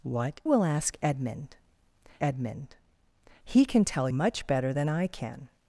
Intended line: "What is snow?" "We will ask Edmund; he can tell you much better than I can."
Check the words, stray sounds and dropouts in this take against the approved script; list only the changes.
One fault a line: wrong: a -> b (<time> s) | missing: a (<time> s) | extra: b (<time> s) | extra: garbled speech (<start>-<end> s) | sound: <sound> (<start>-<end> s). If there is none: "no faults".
missing: is snow We (0.4 s)
extra: Edmund (2.2 s)
missing: you (4.1 s)